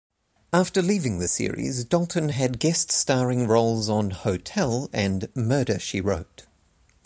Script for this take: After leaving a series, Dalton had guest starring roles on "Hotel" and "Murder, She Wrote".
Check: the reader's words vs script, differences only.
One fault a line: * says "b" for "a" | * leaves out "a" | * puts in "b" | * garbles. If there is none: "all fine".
* says "the" for "a"